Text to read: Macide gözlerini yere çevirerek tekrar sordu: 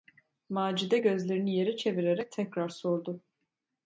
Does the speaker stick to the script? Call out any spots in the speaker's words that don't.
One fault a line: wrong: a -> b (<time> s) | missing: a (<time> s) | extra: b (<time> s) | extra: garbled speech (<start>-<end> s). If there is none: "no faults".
no faults